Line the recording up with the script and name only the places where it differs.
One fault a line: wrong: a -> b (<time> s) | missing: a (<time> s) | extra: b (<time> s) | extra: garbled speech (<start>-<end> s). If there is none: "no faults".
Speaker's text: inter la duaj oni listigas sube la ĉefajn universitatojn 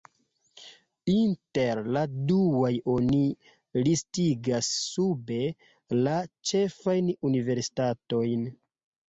no faults